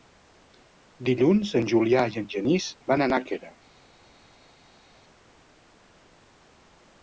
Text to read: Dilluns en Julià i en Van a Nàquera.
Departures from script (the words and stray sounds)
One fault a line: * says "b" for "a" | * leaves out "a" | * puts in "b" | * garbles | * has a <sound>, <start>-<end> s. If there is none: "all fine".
* puts in "Genís"